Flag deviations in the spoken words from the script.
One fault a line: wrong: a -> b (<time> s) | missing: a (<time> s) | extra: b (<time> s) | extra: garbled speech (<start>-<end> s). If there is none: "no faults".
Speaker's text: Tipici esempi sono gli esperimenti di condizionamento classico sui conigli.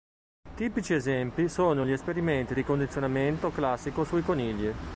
no faults